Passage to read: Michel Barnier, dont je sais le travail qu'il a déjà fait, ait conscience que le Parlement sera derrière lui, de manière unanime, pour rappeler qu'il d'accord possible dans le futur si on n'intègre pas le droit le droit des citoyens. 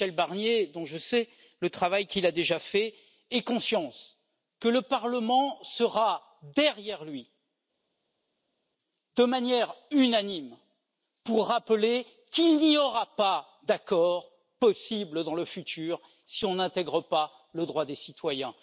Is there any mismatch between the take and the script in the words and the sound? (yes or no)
yes